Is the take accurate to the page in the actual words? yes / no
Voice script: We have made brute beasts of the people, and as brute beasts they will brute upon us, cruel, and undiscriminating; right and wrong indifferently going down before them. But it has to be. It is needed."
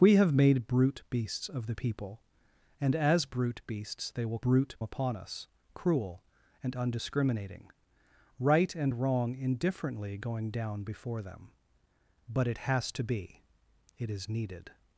yes